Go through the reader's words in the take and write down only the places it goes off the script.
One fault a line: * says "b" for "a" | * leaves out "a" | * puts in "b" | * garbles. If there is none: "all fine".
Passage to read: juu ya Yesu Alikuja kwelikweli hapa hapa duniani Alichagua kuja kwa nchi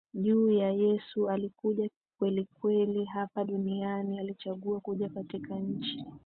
* leaves out "hapa"
* says "katika" for "kwa"